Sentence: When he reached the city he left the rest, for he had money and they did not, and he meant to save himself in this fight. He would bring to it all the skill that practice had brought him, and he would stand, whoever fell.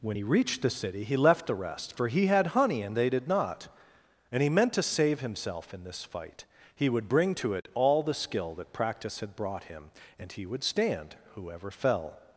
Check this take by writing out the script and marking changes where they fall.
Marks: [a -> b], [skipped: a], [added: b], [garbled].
When he reached the city he left the rest, for he had [money -> honey] and they did not, and he meant to save himself in this fight. He would bring to it all the skill that practice had brought him, and he would stand, whoever fell.